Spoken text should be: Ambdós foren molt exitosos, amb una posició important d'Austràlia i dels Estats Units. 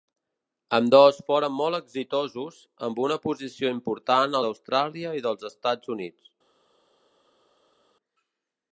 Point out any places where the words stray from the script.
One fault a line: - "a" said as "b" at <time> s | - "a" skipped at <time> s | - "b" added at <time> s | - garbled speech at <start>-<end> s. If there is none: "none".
none